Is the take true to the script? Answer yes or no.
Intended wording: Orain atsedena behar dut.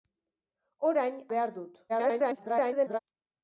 no